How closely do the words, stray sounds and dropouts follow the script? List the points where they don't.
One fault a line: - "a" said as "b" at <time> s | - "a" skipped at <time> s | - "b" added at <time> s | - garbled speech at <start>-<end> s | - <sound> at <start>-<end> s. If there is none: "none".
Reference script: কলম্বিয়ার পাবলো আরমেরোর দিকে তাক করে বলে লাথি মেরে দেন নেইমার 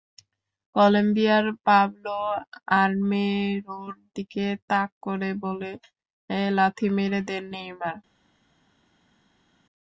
none